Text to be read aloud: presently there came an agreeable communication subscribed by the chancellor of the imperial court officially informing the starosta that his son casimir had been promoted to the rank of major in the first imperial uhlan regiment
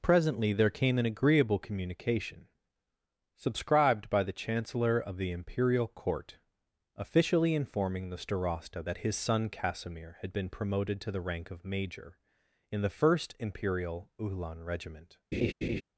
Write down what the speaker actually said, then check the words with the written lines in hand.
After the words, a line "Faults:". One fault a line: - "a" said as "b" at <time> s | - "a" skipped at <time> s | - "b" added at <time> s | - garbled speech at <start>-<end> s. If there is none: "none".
presently there came an agreeable communication subscribed by the chancellor of the imperial court officially informing the starosta that his son casimir had been promoted to the rank of major in the first imperial uhlan regiment
Faults:
none